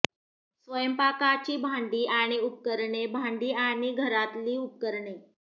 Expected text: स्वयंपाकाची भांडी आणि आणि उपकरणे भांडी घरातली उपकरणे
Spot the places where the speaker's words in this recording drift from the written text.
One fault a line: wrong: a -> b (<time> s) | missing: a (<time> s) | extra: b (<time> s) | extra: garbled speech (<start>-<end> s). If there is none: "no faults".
missing: आणि (2.4 s)
extra: आणि (3.5 s)